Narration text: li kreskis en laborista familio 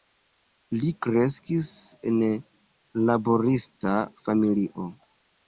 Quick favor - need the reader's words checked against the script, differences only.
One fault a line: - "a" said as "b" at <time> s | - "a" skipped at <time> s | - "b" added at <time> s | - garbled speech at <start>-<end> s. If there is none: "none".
none